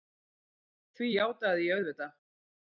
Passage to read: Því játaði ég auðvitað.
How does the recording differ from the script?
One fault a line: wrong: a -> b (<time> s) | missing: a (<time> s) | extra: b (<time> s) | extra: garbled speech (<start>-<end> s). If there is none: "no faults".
no faults